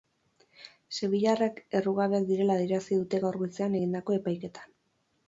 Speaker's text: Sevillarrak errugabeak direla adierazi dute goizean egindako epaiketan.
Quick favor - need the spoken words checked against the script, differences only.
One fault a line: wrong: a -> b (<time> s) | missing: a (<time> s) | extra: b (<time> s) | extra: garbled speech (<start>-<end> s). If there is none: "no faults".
extra: gaur (3.2 s)